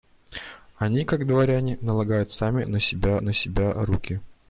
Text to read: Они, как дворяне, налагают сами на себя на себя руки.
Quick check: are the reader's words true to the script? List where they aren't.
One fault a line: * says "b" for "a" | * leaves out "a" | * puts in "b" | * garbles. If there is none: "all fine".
all fine